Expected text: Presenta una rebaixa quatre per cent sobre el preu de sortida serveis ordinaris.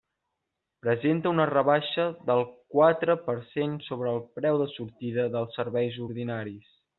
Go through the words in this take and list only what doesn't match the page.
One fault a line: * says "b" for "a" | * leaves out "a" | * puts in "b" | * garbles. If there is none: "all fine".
* puts in "del"
* puts in "dels"